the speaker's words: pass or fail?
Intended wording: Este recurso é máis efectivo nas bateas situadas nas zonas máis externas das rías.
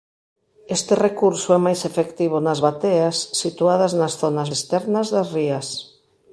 fail